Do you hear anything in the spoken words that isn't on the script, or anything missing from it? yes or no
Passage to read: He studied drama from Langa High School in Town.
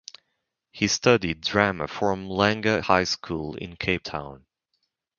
yes